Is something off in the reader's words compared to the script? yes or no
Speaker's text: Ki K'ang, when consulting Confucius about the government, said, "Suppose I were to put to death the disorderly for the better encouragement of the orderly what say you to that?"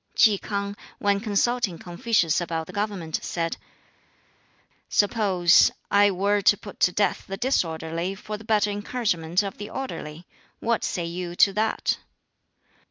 no